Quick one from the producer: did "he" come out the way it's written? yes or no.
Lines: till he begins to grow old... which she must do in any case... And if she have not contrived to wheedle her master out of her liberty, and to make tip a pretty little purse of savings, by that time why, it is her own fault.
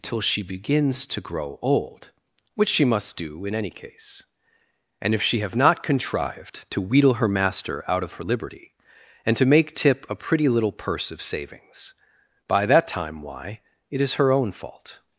no